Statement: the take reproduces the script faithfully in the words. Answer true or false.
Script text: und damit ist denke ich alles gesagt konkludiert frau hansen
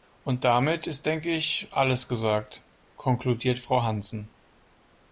true